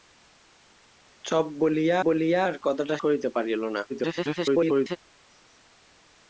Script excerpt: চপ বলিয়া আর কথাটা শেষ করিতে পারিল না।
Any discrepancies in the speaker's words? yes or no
yes